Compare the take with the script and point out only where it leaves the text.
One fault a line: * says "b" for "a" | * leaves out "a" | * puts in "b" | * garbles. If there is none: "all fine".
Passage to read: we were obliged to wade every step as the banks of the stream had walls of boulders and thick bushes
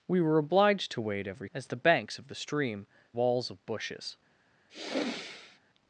* leaves out "step"
* leaves out "had"
* leaves out "boulders and thick"